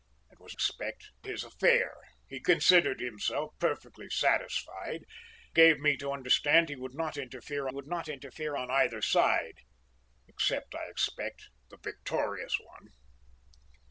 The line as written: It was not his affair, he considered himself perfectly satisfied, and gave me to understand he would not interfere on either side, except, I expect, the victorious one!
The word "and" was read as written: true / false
false